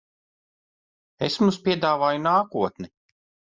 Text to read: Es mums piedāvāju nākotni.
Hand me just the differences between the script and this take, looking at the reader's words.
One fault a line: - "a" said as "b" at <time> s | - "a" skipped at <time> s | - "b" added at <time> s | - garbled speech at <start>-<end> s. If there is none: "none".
none